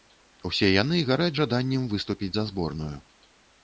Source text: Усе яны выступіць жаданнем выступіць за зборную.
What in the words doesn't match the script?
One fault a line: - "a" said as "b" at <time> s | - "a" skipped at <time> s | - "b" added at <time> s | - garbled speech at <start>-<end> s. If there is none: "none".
- "выступіць" said as "гараць" at 1.1 s